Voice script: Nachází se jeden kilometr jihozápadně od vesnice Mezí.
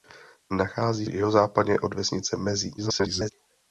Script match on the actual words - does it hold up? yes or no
no